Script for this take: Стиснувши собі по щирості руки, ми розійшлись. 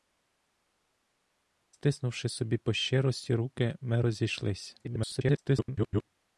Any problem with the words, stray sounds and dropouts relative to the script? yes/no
yes